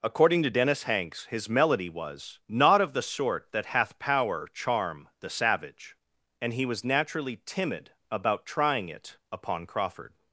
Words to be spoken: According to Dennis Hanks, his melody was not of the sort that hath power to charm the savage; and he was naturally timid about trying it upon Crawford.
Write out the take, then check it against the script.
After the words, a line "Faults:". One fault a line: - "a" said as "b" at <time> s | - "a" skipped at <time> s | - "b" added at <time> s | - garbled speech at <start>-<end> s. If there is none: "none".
According to Dennis Hanks, his melody was not of the sort that hath power charm the savage; and he was naturally timid about trying it upon Crawford.
Faults:
- "to" skipped at 4.5 s